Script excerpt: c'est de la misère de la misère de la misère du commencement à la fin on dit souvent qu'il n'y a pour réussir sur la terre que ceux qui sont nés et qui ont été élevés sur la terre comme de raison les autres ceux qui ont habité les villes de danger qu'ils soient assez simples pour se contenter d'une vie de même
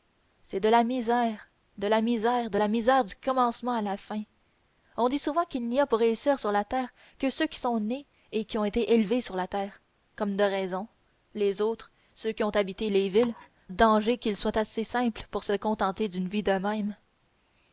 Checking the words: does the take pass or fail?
pass